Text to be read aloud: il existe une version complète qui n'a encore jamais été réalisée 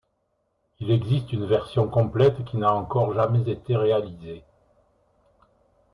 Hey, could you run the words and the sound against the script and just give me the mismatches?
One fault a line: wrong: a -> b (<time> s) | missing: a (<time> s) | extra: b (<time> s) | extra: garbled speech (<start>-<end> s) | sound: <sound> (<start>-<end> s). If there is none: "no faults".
no faults